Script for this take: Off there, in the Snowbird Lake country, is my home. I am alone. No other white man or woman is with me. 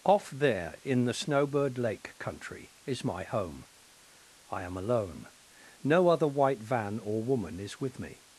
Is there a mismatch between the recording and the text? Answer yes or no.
yes